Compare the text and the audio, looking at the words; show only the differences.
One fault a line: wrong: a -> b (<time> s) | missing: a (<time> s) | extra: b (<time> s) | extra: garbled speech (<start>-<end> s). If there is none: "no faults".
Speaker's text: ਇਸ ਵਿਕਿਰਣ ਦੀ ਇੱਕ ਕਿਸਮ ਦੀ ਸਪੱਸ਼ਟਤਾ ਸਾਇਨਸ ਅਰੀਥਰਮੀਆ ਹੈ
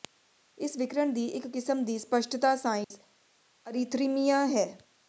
no faults